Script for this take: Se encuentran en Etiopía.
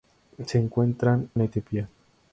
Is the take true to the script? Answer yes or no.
yes